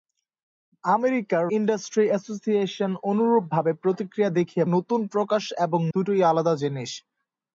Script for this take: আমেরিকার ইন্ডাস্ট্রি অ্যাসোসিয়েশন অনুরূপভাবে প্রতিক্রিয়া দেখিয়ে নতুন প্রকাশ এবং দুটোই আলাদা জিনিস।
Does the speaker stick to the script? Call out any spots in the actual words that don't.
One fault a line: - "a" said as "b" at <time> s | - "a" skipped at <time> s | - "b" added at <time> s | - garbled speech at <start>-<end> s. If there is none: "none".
none